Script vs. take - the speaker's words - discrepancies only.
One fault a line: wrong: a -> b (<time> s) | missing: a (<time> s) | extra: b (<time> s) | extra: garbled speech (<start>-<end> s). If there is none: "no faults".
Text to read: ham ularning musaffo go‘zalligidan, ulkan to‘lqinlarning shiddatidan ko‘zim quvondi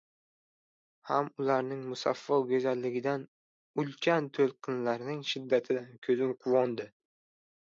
no faults